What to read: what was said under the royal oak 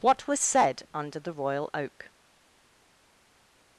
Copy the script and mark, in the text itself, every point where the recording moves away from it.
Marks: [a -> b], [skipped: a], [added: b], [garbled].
what was said under the royal oak